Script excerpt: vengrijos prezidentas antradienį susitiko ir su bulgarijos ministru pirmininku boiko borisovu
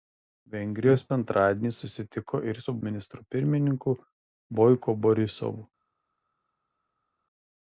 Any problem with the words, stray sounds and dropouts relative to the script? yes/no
yes